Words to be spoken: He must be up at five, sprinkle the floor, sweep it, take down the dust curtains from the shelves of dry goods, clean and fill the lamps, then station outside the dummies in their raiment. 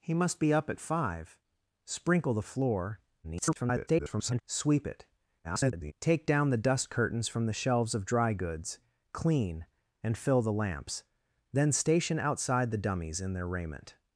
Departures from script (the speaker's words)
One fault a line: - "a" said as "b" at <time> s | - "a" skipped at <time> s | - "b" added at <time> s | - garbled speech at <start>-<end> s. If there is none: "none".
- garbled speech at 3.2-4.4 s
- garbled speech at 5.4-5.9 s